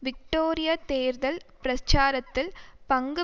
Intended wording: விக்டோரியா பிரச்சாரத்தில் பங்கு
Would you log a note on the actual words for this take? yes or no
yes